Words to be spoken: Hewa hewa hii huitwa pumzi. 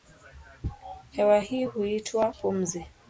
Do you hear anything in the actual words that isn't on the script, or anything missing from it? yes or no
yes